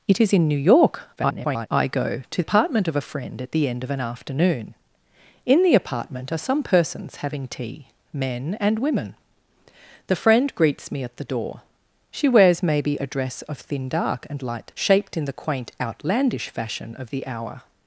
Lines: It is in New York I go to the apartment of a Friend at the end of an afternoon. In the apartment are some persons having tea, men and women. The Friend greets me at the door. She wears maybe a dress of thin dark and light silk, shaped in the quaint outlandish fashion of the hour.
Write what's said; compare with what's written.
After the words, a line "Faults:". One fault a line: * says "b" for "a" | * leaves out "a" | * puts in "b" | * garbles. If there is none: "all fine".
It is in New York [garbled] I go to apartment of a Friend at the end of an afternoon. In the apartment are some persons having tea, men and women. The Friend greets me at the door. She wears maybe a dress of thin dark and light shaped in the quaint outlandish fashion of the hour.
Faults:
* garbles
* leaves out "the"
* leaves out "silk"